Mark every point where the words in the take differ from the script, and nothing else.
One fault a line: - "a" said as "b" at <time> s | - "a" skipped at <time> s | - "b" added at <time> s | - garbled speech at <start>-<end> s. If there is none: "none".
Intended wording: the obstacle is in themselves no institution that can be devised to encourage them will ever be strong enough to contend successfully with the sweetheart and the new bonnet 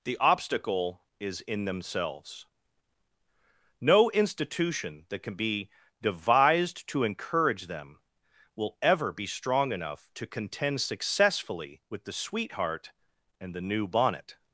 none